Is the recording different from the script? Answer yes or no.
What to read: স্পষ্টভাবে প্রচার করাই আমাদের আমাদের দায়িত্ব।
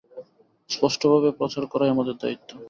yes